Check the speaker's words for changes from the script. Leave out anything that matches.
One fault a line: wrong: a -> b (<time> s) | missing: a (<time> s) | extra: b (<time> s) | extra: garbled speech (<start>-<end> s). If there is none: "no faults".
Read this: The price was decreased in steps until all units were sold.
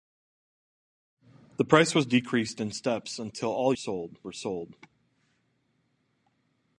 wrong: units -> sold (3.7 s)